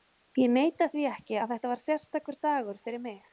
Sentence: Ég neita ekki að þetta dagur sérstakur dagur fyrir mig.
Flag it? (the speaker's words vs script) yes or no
yes